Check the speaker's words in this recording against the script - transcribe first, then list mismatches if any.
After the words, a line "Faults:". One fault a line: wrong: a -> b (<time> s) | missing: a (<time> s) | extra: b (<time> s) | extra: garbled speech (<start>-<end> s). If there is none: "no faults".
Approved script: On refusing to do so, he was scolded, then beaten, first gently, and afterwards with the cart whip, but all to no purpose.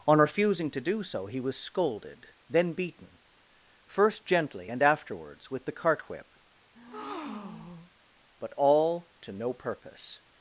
On refusing to do so, he was scolded, then beaten, first gently, and afterwards with the cart whip, but all to no purpose.
Faults:
no faults